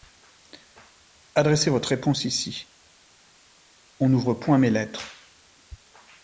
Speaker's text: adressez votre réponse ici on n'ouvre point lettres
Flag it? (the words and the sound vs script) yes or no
yes